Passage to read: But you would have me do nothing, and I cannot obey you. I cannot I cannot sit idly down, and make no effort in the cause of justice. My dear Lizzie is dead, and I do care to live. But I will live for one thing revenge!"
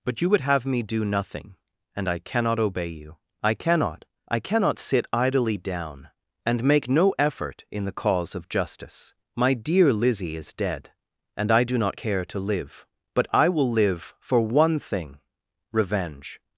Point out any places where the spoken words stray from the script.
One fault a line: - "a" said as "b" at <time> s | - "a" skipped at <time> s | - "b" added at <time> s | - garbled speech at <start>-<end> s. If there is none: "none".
- "not" added at 11.8 s